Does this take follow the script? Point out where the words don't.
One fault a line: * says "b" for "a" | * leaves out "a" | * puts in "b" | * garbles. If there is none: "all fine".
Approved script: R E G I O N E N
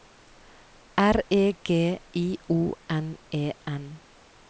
all fine